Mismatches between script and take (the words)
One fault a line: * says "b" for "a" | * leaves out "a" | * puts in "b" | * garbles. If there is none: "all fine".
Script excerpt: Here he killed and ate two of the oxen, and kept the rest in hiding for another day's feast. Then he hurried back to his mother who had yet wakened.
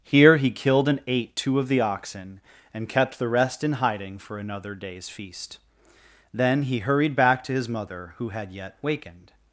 all fine